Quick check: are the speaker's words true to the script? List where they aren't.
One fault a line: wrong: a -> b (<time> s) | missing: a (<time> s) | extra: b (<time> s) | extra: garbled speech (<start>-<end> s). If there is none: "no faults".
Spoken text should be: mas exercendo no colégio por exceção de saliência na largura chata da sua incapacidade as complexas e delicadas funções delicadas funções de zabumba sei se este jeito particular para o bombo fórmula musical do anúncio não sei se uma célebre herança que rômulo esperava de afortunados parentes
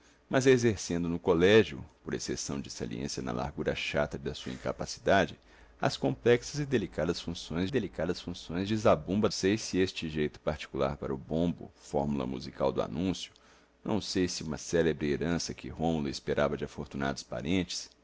no faults